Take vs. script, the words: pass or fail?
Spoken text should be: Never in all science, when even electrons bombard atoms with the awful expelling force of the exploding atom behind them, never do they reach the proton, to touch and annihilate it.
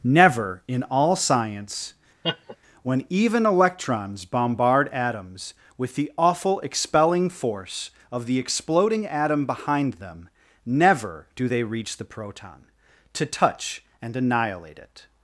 pass